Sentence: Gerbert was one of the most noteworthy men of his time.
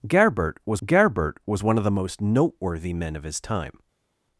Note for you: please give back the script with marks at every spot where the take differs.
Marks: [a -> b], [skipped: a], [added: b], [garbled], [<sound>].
Gerbert was [added: gerbert was] one of the most noteworthy men of his time.